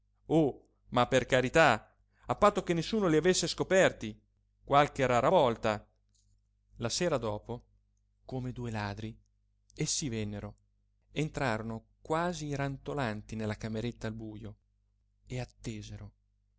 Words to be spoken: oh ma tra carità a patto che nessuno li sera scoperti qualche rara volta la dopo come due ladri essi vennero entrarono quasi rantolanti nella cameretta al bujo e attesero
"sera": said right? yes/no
no